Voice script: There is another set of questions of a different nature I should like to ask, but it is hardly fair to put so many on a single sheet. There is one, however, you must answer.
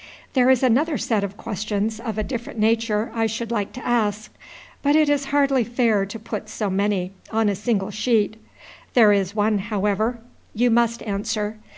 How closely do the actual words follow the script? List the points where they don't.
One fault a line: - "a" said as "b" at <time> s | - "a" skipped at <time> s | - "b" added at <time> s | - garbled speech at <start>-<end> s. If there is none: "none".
none